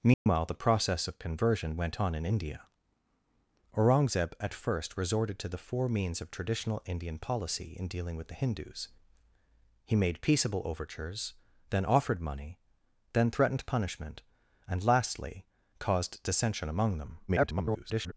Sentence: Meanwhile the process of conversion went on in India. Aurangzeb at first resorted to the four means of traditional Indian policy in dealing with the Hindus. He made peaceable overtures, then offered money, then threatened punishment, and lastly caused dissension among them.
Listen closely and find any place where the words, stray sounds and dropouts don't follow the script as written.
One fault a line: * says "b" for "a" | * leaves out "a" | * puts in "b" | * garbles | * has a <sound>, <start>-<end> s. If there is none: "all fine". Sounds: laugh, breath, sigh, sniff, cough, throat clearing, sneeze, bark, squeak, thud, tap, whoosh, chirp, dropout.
* has a dropout, 0.1-0.3 s
* garbles